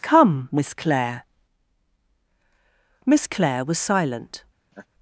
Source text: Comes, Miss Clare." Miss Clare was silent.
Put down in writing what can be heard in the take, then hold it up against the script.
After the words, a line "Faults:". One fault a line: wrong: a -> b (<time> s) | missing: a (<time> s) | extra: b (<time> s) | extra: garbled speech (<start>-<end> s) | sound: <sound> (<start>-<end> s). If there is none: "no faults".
Come, Miss Clare." Miss Clare was silent.
Faults:
wrong: Comes -> Come (0.0 s)
sound: laugh (4.7-4.9 s)